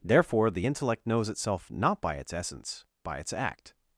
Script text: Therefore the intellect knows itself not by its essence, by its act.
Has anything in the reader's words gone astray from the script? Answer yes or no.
no